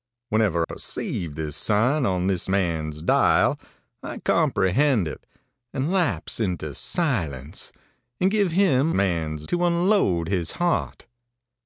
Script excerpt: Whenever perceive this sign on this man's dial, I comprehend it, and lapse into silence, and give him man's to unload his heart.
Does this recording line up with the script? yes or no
yes